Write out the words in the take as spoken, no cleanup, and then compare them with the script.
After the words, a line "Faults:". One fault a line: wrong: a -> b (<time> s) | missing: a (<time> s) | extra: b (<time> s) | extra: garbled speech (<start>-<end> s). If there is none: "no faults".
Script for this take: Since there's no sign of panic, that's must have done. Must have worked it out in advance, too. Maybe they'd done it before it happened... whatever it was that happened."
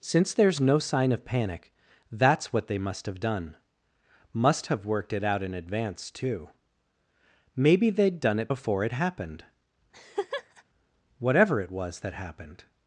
Since there's no sign of panic, that's what they must have done. Must have worked it out in advance, too. Maybe they'd done it before it happened... whatever it was that happened."
Faults:
extra: what they (2.5 s)